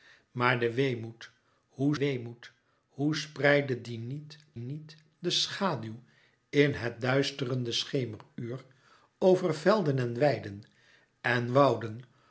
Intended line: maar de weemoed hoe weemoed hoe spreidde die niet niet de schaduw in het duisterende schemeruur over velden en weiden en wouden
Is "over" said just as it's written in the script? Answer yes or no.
yes